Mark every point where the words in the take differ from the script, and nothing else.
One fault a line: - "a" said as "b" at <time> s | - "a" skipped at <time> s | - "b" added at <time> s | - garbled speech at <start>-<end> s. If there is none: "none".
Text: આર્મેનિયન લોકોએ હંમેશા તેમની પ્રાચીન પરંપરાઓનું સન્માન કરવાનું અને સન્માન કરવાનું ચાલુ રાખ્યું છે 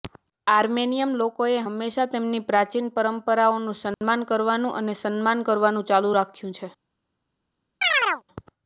none